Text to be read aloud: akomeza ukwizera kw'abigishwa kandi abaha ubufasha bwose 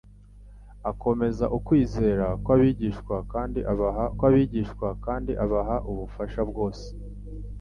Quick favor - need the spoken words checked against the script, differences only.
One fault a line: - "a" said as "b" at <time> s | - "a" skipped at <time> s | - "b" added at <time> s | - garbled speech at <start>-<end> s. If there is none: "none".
- "kw'abigishwa kandi abaha" added at 4.2 s